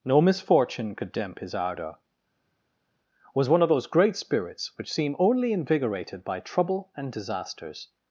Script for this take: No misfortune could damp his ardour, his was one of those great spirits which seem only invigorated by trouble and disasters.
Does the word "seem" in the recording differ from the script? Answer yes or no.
no